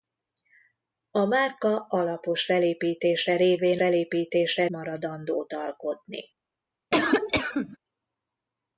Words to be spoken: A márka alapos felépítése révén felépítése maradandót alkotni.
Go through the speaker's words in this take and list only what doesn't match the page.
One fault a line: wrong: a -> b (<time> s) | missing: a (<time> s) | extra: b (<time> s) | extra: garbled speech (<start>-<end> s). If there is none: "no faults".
no faults